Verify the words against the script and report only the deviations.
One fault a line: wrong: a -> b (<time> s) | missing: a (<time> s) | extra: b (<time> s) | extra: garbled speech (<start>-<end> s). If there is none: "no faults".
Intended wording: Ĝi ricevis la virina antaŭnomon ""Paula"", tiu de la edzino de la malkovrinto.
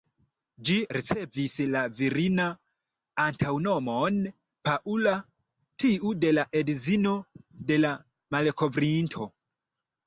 no faults